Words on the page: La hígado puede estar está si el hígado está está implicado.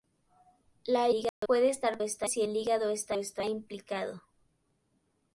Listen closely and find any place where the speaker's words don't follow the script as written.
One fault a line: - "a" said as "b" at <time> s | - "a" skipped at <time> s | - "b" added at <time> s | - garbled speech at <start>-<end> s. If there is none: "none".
none